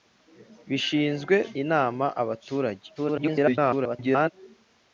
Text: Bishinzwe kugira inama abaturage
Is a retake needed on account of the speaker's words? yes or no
yes